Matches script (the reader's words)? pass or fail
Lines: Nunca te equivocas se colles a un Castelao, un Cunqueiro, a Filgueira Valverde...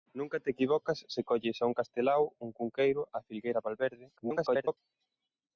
fail